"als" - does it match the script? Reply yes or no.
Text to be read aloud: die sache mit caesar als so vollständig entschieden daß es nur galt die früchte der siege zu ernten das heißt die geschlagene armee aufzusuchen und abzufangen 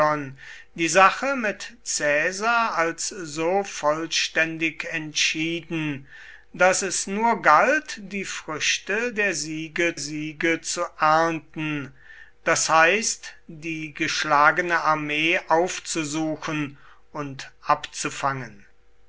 yes